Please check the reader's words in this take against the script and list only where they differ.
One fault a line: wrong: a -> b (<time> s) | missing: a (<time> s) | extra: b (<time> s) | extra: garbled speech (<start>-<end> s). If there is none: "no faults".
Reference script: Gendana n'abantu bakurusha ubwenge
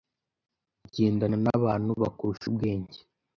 no faults